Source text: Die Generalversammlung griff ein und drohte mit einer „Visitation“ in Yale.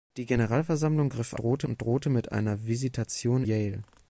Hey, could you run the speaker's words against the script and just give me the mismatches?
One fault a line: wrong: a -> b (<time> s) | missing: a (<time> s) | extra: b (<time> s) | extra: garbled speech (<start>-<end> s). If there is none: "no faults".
wrong: ein -> drohte (1.4 s)
missing: in (3.4 s)